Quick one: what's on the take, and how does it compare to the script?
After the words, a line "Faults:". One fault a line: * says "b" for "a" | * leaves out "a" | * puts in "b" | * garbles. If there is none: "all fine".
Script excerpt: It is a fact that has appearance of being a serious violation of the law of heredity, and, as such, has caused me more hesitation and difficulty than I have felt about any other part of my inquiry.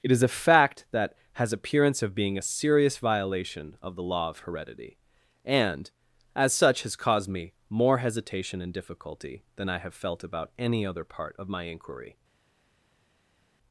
It is a fact that has appearance of being a serious violation of the law of heredity, and, as such, has caused me more hesitation and difficulty than I have felt about any other part of my inquiry.
Faults:
all fine